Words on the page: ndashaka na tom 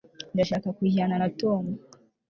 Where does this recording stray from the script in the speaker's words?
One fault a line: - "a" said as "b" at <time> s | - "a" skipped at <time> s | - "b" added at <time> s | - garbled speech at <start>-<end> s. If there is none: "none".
- "kujyana" added at 0.8 s